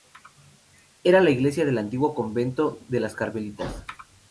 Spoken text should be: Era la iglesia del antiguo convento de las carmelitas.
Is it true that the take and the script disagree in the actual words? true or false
false